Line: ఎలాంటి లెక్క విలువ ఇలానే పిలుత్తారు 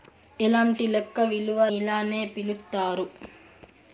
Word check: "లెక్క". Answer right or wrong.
right